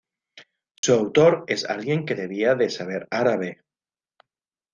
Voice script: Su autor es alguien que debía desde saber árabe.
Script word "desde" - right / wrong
wrong